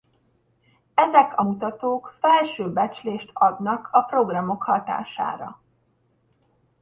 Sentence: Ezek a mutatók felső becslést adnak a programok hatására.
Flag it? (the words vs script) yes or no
no